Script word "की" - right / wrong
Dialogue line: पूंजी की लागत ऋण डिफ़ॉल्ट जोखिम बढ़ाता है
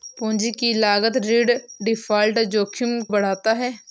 right